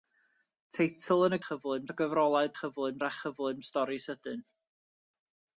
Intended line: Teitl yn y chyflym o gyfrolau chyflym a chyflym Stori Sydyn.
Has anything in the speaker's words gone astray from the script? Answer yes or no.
no